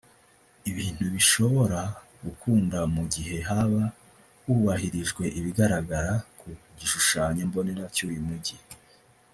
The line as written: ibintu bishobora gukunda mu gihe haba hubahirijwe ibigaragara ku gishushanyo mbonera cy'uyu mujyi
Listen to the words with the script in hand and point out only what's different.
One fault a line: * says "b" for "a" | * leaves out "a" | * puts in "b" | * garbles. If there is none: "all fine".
all fine